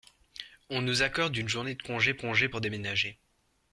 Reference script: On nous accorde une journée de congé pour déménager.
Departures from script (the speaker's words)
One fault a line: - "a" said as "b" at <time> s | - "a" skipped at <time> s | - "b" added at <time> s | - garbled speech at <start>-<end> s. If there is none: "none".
- "congé" added at 2.2 s